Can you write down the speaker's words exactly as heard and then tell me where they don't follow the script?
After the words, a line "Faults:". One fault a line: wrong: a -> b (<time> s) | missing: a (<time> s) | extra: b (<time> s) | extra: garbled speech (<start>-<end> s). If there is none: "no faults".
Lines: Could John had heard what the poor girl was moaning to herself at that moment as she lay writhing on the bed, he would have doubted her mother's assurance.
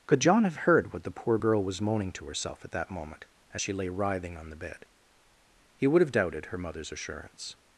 Could John have heard what the poor girl was moaning to herself at that moment as she lay writhing on the bed, he would have doubted her mother's assurance.
Faults:
wrong: had -> have (0.4 s)